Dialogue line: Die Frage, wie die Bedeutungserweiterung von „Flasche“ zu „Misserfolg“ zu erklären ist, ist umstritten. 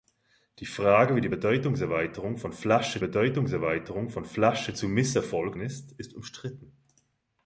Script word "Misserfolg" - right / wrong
wrong